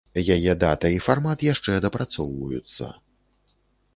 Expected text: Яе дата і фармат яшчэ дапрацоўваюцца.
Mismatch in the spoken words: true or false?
false